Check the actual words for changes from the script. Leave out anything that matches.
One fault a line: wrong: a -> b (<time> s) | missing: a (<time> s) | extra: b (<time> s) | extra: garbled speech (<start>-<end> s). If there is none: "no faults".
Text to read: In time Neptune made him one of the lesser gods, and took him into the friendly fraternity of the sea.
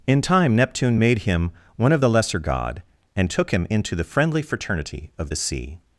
wrong: gods -> god (2.4 s)